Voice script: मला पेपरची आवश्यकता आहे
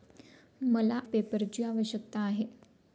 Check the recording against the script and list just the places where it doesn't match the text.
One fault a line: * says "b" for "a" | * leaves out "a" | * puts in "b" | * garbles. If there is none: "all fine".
all fine